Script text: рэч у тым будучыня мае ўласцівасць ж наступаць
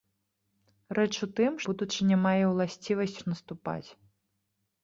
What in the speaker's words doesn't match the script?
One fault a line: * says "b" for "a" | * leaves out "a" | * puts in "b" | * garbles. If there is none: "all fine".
all fine